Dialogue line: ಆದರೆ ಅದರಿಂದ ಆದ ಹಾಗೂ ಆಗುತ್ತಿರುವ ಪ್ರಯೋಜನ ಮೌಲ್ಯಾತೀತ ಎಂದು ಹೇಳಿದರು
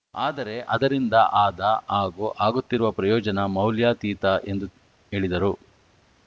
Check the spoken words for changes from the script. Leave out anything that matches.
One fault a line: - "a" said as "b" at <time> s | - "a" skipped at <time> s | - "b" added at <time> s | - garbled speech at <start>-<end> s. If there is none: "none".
none